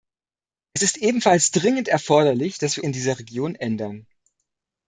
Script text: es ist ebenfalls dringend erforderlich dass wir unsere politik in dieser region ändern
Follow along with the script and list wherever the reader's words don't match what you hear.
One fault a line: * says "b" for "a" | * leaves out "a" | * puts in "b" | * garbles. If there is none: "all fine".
* leaves out "unsere politik"